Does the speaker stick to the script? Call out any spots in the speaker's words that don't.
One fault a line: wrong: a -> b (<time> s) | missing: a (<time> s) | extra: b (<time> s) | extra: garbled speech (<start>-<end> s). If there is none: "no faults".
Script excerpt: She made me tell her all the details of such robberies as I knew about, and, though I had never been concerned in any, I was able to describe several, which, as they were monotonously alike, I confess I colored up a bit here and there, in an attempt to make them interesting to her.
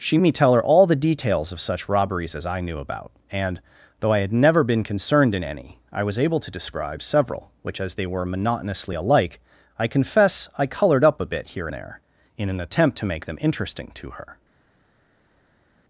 missing: made (0.2 s)
missing: and (11.7 s)